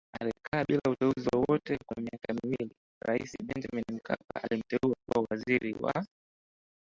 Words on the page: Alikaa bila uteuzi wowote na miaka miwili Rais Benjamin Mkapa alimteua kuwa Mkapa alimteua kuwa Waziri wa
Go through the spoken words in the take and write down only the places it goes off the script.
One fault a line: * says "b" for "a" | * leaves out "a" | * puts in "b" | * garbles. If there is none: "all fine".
* says "kwa" for "na"
* leaves out "Mkapa alimteua kuwa"